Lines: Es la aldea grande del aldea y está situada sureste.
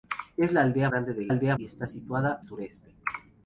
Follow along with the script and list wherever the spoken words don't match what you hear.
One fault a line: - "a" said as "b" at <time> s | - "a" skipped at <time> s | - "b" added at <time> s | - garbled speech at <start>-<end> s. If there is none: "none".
none